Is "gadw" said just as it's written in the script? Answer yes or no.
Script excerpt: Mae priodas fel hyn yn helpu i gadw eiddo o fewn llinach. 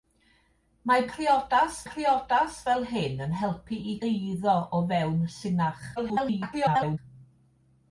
no